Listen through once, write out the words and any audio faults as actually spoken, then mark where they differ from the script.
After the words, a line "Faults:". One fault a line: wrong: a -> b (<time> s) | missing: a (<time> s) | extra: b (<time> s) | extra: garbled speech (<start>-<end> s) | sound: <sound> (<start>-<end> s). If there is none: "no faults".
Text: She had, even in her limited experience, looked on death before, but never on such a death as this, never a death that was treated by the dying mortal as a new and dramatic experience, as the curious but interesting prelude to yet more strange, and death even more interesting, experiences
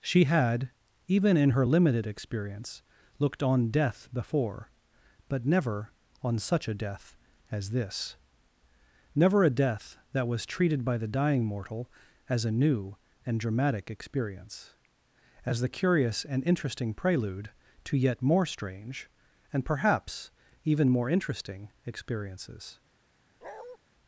She had, even in her limited experience, looked on death before, but never on such a death as this, never a death that was treated by the dying mortal as a new and dramatic experience, as the curious and interesting prelude to yet more strange, and perhaps even more interesting, experiences
Faults:
wrong: but -> and (16.2 s)
wrong: death -> perhaps (19.7 s)
sound: bark (23.4-23.8 s)